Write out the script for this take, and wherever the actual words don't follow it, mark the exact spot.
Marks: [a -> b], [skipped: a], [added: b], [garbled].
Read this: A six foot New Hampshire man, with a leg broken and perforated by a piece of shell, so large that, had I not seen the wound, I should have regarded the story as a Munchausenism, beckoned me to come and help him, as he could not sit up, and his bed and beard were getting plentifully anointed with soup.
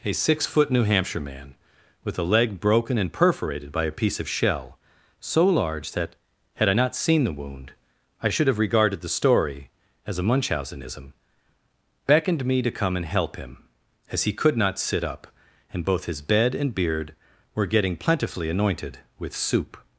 A six foot New Hampshire man, with a leg broken and perforated by a piece of shell, so large that, had I not seen the wound, I should have regarded the story as a Munchausenism, beckoned me to come and help him, as he could not sit up, and [added: both] his bed and beard were getting plentifully anointed with soup.